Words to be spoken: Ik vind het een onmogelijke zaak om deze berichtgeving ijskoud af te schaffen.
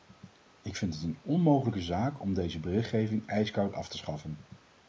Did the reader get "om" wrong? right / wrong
right